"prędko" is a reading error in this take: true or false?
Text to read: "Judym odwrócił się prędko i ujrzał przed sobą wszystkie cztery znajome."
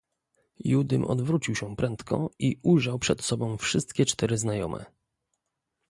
false